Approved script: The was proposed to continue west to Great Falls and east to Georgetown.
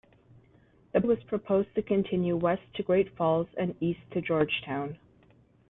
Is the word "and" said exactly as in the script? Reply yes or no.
yes